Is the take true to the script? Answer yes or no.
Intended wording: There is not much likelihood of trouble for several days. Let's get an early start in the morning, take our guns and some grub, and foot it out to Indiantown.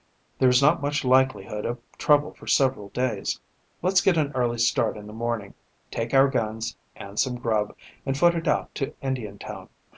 yes